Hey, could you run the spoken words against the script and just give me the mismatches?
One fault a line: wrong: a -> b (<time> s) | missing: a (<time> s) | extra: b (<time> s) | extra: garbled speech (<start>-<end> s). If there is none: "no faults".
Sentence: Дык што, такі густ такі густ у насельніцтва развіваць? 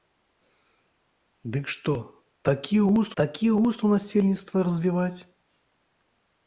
no faults